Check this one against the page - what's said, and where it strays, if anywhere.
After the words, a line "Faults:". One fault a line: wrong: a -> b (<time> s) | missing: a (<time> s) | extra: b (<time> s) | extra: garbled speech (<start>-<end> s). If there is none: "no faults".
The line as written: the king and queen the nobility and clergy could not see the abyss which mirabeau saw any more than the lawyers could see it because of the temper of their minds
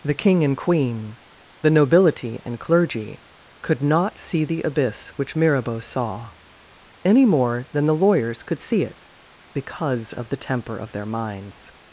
the king and queen the nobility and clergy could not see the abyss which mirabeau saw any more than the lawyers could see it because of the temper of their minds
Faults:
no faults